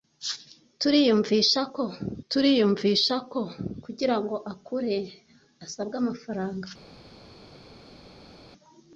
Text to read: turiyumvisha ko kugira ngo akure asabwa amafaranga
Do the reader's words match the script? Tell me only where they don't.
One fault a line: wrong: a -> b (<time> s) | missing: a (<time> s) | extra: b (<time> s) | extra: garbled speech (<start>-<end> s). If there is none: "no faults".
extra: turiyumvisha ko (2.3 s)